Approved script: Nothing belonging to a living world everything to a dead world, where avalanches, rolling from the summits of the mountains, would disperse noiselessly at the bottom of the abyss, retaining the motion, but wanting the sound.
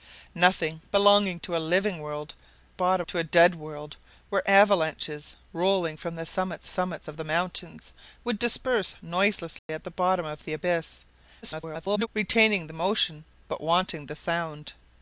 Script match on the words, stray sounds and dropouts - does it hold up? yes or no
no